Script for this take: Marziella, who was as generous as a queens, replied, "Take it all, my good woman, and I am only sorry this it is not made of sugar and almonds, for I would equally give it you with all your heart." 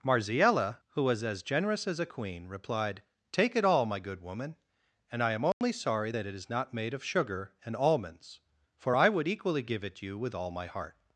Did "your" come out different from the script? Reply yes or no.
yes